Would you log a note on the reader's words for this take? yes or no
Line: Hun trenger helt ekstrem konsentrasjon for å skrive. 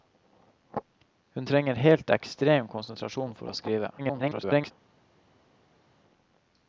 yes